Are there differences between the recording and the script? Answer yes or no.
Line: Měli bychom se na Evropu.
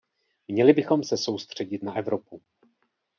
yes